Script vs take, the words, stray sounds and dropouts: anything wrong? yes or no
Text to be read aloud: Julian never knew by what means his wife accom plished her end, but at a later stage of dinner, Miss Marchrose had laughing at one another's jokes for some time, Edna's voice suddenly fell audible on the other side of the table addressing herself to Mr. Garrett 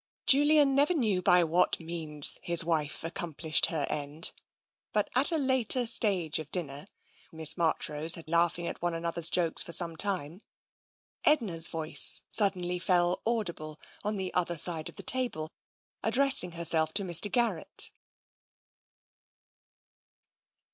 no